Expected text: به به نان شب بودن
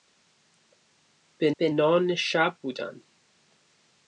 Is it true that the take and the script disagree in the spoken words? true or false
false